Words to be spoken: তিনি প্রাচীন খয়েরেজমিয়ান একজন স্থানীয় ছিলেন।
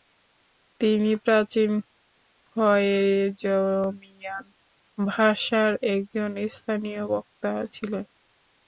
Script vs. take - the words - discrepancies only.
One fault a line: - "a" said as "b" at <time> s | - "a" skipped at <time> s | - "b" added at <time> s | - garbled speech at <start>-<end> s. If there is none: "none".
- "ভাষার" added at 5.0 s
- "বক্তা" added at 7.0 s